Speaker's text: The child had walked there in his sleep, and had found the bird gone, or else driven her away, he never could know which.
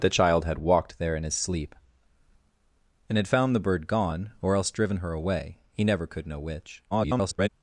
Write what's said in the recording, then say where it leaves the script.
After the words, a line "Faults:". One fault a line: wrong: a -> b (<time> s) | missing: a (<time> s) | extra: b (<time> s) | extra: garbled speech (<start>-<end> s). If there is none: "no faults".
The child had walked there in his sleep, and had found the bird gone, or else driven her away, he never could know which. [garbled]
Faults:
extra: garbled speech (6.9-7.5 s)